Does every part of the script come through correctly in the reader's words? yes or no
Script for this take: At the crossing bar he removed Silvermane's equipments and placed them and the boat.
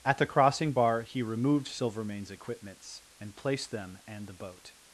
yes